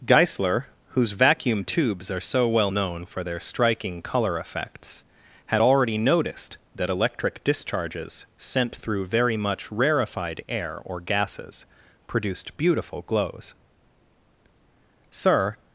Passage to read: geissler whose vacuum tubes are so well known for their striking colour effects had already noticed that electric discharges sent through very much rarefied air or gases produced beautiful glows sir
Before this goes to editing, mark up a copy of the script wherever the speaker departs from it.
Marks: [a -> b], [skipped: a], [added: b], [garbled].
geissler whose vacuum tubes are so well known for their striking colour effects had already noticed that electric discharges sent through very much rarefied air or gases produced beautiful glows sir